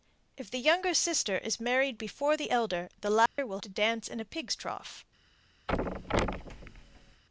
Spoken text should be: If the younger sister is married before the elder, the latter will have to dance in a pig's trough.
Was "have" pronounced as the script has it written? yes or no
no